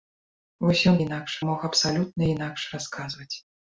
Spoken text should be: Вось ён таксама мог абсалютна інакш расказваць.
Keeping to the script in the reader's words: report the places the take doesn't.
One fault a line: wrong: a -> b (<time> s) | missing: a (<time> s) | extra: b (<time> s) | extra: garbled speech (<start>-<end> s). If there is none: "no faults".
wrong: таксама -> інакш (1.0 s)